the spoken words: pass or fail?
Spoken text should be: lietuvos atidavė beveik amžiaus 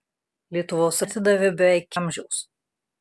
pass